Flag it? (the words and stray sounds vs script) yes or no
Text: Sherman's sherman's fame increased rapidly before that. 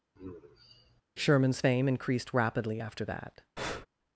yes